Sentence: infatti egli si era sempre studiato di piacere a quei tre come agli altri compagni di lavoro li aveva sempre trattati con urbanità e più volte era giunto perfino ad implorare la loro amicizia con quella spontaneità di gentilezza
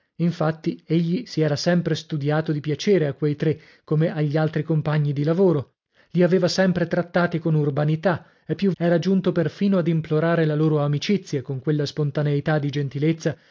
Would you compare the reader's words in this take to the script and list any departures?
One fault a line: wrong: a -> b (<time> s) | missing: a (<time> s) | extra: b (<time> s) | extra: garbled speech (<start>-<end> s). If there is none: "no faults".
missing: volte (8.7 s)